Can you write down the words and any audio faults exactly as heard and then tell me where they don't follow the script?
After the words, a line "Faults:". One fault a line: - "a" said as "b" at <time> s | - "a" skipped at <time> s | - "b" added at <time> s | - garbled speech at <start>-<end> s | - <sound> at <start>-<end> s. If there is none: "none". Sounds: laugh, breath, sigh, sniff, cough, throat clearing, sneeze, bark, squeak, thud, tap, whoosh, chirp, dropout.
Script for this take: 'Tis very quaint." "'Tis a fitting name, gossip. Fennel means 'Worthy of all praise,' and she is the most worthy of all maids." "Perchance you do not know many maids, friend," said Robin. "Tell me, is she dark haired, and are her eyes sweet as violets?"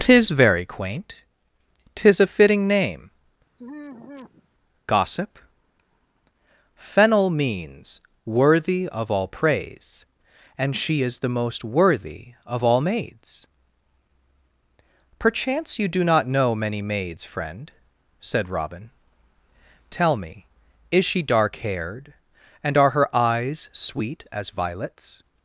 'Tis very quaint." "'Tis a fitting name, gossip. Fennel means 'Worthy of all praise,' and she is the most worthy of all maids." "Perchance you do not know many maids, friend," said Robin. "Tell me, is she dark haired, and are her eyes sweet as violets?"
Faults:
- sigh at 3.6-4.5 s